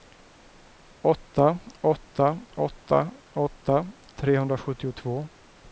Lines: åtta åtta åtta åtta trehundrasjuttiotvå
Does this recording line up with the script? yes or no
yes